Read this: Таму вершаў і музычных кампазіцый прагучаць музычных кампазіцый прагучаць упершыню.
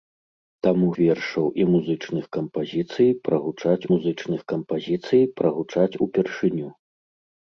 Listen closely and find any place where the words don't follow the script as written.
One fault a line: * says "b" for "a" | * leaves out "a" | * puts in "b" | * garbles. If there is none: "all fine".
all fine